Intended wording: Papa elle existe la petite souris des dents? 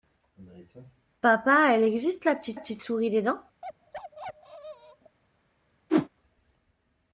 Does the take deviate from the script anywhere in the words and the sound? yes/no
yes